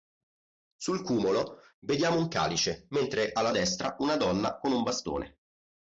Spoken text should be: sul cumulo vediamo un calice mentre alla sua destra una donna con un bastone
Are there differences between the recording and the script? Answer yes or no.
yes